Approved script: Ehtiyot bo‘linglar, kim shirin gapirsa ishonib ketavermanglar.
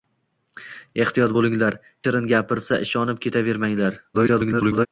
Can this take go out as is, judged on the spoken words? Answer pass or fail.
fail